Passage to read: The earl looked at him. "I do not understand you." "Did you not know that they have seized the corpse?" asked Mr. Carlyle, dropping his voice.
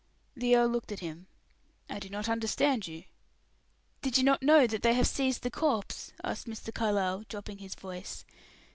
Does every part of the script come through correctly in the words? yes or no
yes